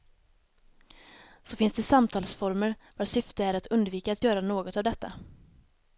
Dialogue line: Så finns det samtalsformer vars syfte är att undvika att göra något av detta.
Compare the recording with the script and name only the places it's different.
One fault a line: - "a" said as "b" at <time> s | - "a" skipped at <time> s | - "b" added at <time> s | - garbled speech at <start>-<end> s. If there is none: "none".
none